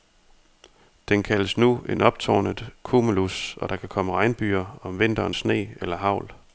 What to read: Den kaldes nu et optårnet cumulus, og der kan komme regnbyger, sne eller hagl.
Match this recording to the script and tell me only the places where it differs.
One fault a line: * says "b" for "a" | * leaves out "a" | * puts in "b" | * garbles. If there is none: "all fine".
* says "en" for "et"
* puts in "om vinteren"